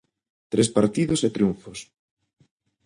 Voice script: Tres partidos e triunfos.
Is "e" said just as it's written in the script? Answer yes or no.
yes